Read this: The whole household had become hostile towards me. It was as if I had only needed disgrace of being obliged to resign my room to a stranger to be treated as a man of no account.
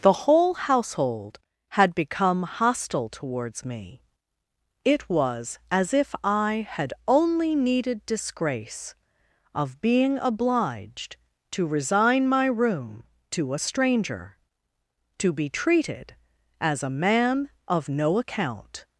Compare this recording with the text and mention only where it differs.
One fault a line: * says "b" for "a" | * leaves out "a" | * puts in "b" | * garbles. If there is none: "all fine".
all fine